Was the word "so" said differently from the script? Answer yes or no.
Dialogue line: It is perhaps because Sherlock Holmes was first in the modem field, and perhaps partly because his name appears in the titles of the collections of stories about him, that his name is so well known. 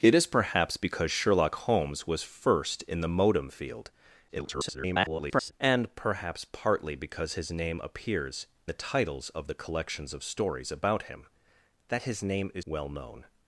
yes